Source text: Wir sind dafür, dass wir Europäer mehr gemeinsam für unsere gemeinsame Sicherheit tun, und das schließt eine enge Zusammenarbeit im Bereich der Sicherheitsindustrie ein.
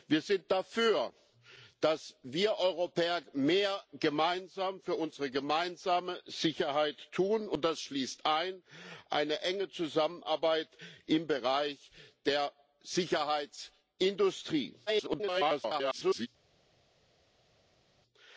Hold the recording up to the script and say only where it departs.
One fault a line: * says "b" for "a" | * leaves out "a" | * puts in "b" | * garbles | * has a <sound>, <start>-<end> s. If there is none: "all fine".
* garbles